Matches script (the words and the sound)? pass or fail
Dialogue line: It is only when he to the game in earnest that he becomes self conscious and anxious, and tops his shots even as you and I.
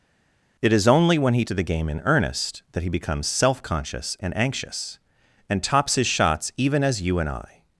pass